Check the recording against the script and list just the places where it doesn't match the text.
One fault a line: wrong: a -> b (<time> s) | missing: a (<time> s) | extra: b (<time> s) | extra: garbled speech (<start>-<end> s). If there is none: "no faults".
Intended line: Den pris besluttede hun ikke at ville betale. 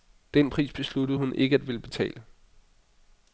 no faults